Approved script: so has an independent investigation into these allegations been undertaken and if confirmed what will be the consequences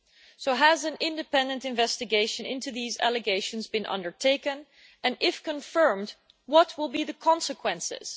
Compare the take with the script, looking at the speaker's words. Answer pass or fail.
pass